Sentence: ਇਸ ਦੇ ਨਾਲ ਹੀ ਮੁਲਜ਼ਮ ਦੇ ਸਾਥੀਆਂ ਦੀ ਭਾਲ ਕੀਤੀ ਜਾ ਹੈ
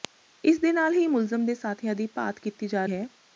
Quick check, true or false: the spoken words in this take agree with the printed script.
true